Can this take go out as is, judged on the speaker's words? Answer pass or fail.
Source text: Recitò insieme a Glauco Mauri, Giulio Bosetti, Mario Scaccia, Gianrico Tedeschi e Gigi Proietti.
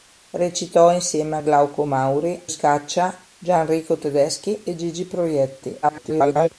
fail